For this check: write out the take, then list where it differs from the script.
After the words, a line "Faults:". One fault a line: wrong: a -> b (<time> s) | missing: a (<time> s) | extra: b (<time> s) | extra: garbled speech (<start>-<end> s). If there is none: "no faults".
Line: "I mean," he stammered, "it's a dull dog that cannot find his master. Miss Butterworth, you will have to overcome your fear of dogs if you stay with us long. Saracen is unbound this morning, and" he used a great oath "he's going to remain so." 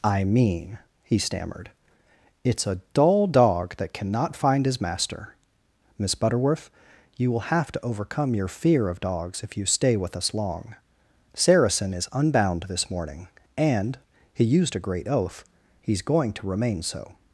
"I mean," he stammered, "it's a dull dog that cannot find his master. Miss Butterworth, you will have to overcome your fear of dogs if you stay with us long. Saracen is unbound this morning, and" he used a great oath "he's going to remain so."
Faults:
no faults